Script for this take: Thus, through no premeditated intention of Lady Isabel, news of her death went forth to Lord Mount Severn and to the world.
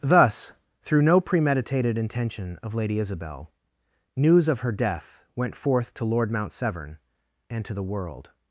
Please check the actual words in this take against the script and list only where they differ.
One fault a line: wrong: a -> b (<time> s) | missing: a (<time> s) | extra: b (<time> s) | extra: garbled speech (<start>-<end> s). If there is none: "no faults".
no faults